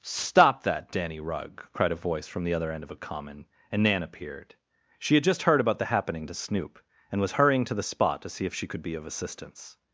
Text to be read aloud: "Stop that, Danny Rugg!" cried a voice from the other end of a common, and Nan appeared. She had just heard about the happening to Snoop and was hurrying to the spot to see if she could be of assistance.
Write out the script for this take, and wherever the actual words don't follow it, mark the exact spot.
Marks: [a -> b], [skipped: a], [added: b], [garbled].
"Stop that, Danny Rugg!" cried a voice from the other end of a common, and Nan appeared. She had just heard about the happening to Snoop and was hurrying to the spot to see if she could be of assistance.